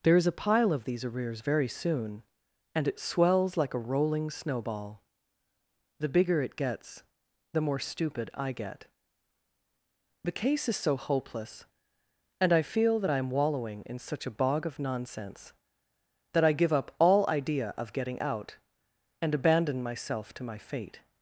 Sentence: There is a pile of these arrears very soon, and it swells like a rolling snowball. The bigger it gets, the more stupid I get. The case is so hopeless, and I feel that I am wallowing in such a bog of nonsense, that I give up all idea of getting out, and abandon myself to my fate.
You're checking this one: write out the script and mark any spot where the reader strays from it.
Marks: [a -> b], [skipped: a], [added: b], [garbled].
There is a pile of these arrears very soon, and it swells like a rolling snowball. The bigger it gets, the more stupid I get. The case is so hopeless, and I feel that I am wallowing in such a bog of nonsense, that I give up all idea of getting out, and abandon myself to my fate.